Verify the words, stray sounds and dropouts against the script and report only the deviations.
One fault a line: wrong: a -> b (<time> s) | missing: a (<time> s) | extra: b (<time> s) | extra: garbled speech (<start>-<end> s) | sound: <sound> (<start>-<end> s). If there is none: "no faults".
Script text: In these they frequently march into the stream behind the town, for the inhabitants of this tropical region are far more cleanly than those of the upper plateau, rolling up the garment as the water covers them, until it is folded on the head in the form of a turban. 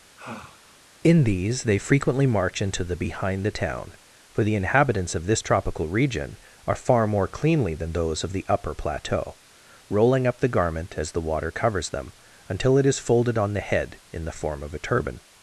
sound: sigh (0.2-0.8 s)
missing: stream (3.0 s)